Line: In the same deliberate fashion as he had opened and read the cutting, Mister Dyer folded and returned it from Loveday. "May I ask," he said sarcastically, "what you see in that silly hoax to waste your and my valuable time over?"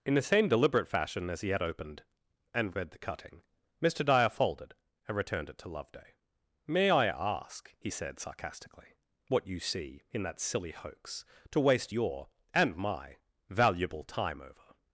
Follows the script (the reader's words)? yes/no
no